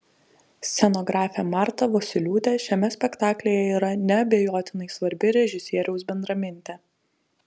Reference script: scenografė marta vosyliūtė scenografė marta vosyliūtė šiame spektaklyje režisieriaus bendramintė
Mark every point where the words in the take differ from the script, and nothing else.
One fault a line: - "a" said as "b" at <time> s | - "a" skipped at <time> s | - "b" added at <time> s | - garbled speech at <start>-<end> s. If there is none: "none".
- "scenografė marta vosyliūtė šiame spektaklyje" said as "šiame spektaklyje yra neabejotinai svarbi" at 2.6 s